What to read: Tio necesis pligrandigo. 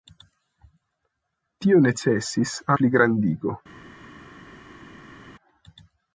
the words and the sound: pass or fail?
pass